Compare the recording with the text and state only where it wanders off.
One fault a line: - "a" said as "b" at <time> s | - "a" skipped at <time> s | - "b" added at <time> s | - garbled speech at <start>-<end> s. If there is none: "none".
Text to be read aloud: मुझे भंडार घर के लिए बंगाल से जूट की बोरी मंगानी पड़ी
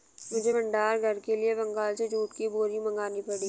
none